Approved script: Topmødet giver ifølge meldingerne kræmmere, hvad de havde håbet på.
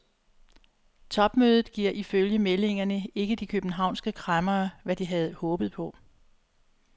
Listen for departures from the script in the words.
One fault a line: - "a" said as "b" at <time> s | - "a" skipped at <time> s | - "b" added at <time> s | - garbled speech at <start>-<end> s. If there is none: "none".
- "ikke de københavnske" added at 3.1 s